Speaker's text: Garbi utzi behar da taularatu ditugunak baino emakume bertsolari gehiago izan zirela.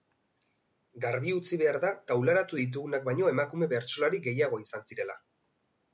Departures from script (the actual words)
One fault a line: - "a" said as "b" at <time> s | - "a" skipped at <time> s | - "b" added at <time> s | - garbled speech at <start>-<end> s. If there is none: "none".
none